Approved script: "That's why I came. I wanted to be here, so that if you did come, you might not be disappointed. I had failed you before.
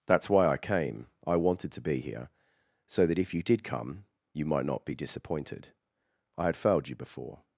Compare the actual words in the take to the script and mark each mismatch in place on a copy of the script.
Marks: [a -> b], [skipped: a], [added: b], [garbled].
"That's why I came. I wanted to be here, so that if you did come, you might not be disappointed. I had failed you before.